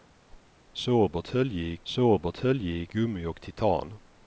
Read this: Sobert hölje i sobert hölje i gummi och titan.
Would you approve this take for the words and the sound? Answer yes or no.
no